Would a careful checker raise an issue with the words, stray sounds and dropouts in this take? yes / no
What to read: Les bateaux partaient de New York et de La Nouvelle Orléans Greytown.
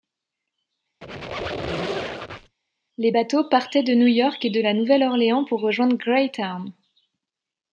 yes